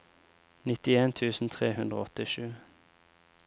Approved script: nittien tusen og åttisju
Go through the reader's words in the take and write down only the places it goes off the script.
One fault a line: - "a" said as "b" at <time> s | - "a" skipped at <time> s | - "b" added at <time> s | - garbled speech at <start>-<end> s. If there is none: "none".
- "tre hundre" added at 1.6 s